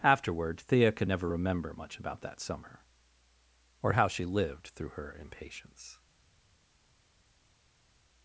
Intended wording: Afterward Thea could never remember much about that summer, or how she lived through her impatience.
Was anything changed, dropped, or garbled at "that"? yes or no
no